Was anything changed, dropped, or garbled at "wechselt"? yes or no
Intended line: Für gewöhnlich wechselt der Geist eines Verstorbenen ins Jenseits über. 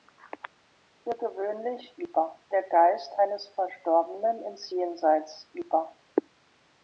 yes